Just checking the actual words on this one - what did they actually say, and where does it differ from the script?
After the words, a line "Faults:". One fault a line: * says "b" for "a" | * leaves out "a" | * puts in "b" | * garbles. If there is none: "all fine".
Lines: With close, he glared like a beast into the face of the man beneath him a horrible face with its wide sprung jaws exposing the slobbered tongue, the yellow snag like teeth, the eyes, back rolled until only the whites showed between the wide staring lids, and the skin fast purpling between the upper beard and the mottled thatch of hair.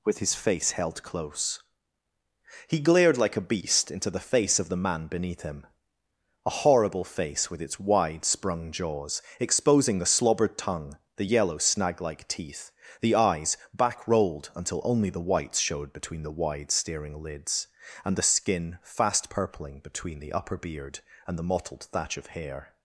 With his face held close, he glared like a beast into the face of the man beneath him a horrible face with its wide sprung jaws exposing the slobbered tongue, the yellow snag like teeth, the eyes, back rolled until only the whites showed between the wide staring lids, and the skin fast purpling between the upper beard and the mottled thatch of hair.
Faults:
* puts in "his face held"